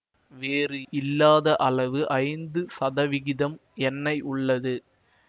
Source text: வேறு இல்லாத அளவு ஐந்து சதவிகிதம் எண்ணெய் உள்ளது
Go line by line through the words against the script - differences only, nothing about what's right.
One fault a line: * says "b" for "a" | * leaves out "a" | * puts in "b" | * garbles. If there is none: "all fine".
all fine